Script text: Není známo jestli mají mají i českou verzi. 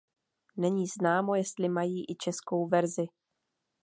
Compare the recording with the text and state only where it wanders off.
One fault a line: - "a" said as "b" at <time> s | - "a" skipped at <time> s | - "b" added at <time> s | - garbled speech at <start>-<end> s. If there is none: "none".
- "mají" skipped at 2.1 s